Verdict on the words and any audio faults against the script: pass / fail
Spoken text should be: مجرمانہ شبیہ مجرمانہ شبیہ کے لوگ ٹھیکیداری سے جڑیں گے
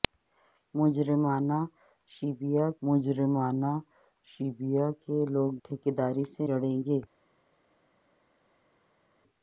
pass